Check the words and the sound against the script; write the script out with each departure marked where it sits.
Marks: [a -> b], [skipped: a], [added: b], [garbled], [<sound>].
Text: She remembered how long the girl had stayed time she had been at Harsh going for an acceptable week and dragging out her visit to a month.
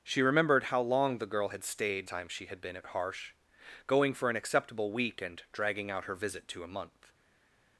She remembered how long the girl had stayed time she had been at Harsh going for an acceptable week and dragging out her visit to a month.